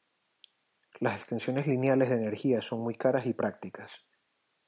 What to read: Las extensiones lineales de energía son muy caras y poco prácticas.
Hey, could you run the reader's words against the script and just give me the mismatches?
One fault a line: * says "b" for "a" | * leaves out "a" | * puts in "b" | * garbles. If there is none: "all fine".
* leaves out "poco"